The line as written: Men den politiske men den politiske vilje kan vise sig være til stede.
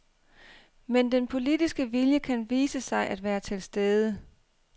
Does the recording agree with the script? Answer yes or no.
no